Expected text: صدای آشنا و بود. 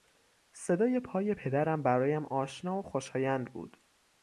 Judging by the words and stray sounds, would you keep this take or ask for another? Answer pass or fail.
fail